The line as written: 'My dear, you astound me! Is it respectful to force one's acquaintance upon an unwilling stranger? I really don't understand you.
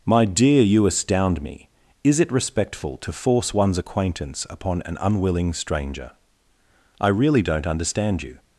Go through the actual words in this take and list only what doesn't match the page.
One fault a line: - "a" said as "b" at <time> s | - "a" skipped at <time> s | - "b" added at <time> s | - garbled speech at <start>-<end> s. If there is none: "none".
none